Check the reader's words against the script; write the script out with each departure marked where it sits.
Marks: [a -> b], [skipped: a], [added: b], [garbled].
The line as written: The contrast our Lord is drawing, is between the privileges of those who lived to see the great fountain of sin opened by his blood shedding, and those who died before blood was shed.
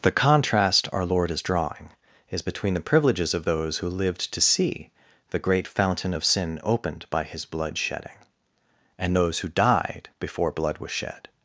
The contrast our Lord is drawing, is between the privileges of those who lived to see the great fountain of sin opened by his blood shedding, and those who died before blood was shed.